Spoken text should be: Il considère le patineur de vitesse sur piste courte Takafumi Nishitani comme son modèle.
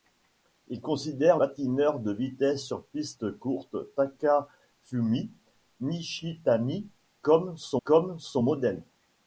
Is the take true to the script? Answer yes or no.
no